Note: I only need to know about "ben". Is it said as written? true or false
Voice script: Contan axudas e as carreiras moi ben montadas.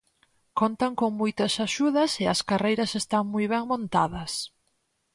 true